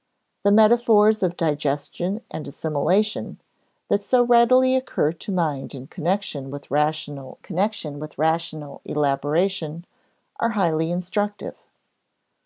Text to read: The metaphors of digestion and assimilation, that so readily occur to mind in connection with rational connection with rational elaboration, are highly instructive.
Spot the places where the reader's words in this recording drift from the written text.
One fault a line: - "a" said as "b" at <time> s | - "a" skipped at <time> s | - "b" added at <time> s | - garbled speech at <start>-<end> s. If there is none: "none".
none